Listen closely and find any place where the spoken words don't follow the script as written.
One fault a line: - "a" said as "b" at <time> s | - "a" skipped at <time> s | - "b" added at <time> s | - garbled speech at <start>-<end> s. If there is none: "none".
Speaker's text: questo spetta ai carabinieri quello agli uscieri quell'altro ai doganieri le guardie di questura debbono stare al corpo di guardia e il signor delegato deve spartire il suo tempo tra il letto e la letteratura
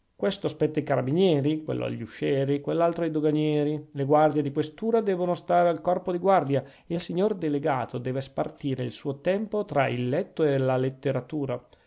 none